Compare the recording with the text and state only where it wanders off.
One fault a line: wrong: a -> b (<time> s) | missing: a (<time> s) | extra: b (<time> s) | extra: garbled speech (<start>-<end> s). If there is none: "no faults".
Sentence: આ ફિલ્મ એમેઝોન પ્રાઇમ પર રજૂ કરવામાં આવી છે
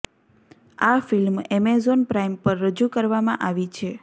no faults